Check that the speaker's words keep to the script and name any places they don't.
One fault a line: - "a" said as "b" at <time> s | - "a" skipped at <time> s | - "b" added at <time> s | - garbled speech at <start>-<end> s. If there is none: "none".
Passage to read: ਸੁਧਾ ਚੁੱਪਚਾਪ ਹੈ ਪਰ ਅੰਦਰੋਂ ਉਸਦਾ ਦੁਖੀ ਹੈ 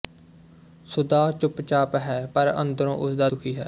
none